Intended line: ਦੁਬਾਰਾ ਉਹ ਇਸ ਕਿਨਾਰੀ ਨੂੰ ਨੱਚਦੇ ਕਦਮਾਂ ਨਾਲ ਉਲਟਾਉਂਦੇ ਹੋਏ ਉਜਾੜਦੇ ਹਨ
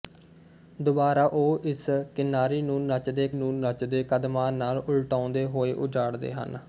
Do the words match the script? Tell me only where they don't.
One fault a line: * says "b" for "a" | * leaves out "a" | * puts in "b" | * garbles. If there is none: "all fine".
* puts in "ਨੂੰ ਨੱਚਦੇ"